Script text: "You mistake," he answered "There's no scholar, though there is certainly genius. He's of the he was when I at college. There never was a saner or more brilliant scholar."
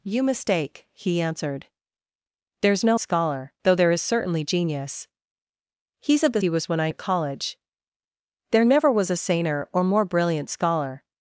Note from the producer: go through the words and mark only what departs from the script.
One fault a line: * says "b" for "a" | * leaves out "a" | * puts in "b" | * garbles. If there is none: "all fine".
all fine